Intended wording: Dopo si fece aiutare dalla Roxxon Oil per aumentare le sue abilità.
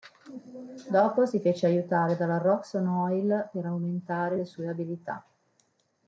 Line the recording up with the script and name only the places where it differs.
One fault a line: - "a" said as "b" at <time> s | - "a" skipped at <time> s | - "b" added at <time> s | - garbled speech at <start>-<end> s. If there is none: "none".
none